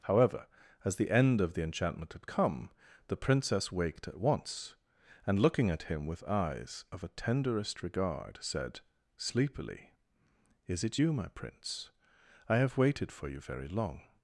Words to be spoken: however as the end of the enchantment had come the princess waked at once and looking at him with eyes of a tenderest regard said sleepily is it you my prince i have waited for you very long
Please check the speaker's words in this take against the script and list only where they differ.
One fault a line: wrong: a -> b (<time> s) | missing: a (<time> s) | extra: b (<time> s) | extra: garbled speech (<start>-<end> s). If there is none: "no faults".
no faults